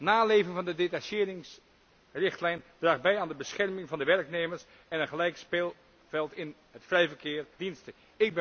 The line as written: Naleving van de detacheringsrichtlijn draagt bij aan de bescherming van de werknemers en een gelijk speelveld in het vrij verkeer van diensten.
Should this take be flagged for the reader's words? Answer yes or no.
yes